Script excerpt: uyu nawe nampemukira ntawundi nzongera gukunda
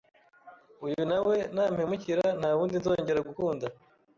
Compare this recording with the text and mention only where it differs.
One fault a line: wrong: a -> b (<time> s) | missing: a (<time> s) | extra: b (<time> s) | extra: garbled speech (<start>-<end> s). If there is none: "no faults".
no faults